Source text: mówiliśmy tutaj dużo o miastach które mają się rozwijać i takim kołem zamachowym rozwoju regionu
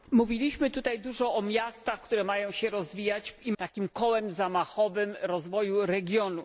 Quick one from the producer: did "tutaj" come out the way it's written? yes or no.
yes